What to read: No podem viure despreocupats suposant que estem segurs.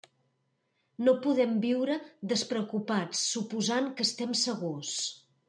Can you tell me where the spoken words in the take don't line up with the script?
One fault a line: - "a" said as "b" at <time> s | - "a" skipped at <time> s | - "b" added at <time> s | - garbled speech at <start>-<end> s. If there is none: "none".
none